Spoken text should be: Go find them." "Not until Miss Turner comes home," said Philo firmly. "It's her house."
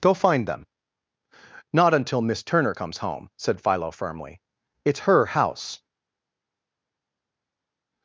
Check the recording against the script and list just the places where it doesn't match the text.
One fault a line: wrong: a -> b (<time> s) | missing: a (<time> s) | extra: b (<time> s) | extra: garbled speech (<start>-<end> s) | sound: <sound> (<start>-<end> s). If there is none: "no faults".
no faults